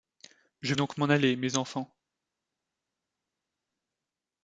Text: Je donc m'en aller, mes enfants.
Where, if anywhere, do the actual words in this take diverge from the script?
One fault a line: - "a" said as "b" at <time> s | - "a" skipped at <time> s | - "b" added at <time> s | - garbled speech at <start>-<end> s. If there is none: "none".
none